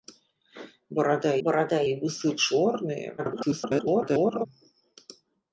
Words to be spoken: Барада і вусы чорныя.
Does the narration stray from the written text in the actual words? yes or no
yes